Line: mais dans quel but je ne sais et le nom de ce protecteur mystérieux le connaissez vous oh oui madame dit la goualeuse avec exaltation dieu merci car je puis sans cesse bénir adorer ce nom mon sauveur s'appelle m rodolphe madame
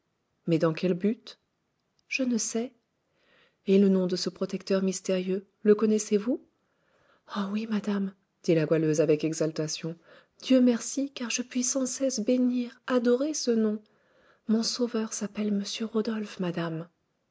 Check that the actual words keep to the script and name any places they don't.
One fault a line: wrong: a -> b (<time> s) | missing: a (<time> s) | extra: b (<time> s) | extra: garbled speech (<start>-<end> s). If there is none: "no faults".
no faults